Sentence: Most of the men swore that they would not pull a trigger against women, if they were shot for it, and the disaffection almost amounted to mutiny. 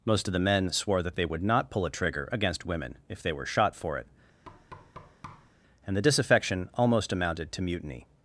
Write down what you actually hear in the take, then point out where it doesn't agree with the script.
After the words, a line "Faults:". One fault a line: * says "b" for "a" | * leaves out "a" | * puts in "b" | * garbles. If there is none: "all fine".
Most of the men swore that they would not pull a trigger against women, if they were shot for it, and the disaffection almost amounted to mutiny.
Faults:
all fine